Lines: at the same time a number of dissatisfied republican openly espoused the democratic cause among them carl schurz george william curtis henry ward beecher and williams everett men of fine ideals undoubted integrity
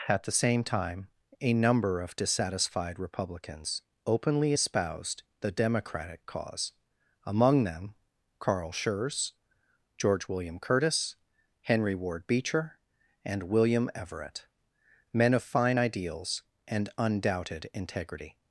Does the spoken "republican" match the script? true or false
false